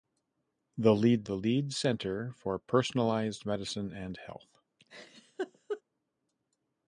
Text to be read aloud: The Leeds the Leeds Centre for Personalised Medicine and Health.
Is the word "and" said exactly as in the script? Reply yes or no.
yes